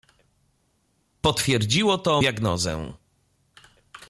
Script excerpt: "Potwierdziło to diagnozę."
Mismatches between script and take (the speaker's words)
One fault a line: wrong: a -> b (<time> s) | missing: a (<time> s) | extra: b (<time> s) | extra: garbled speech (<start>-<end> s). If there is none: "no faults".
no faults